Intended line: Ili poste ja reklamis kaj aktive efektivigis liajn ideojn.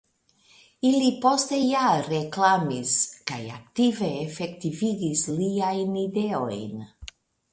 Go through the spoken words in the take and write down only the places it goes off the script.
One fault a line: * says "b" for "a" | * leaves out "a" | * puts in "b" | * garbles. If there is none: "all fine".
all fine